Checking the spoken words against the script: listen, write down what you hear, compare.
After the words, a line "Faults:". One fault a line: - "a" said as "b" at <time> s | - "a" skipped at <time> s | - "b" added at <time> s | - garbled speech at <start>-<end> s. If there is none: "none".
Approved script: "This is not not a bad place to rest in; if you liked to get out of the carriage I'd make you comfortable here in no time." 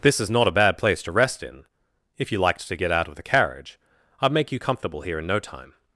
"This is not a bad place to rest in; if you liked to get out of the carriage I'd make you comfortable here in no time."
Faults:
- "not" skipped at 0.5 s